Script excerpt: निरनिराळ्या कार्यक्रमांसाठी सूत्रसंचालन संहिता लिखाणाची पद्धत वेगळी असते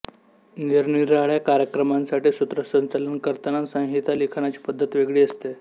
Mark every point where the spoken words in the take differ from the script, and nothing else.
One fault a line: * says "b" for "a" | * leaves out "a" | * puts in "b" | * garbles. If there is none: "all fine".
* puts in "करताना"